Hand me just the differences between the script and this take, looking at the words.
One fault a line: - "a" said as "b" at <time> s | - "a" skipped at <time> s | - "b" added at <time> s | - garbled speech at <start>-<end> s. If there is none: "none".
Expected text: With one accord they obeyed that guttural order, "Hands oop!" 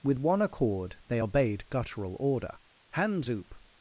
- "that" skipped at 1.6 s